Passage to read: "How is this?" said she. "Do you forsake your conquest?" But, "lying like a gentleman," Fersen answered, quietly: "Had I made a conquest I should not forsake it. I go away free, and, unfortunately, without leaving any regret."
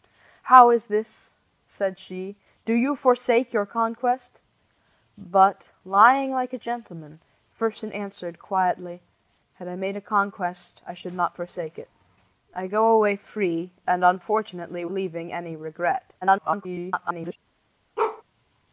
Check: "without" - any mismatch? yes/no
yes